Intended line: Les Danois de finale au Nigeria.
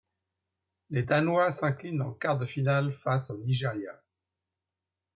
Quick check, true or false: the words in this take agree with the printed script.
false